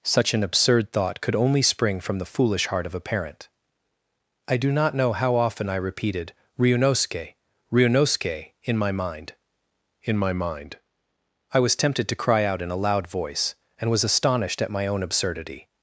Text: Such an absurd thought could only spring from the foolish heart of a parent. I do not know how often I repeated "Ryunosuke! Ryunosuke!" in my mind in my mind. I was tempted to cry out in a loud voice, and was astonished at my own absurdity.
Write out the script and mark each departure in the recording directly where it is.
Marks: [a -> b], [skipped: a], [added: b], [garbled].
Such an absurd thought could only spring from the foolish heart of a parent. I do not know how often I repeated "Ryunosuke! Ryunosuke!" in my mind in my mind. I was tempted to cry out in a loud voice, and was astonished at my own absurdity.